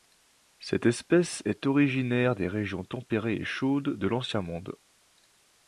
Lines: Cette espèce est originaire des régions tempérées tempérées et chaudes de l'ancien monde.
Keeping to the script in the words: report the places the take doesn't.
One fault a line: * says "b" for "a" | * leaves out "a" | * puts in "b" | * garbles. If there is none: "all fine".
* leaves out "tempérées"